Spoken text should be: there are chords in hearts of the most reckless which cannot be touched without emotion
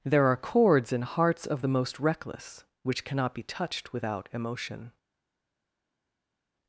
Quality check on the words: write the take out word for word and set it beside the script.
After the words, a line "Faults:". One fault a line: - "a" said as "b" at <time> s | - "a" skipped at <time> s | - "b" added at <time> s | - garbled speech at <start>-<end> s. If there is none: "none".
there are chords in hearts of the most reckless which cannot be touched without emotion
Faults:
none